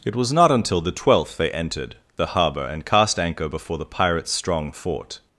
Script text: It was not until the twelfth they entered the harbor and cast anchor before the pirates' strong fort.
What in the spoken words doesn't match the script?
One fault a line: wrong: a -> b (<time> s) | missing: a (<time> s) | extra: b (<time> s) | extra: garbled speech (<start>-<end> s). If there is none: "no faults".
no faults